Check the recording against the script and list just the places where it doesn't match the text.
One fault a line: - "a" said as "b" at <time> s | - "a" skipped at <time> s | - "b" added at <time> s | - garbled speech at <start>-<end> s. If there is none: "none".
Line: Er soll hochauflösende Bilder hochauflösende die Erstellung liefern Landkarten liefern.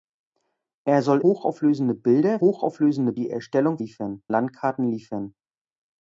none